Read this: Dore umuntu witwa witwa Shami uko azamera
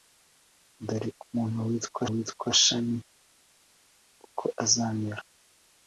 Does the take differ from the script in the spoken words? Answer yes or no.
no